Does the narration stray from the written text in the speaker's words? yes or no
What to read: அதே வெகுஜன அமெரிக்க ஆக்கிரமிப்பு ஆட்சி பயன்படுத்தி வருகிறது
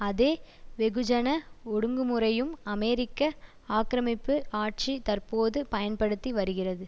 yes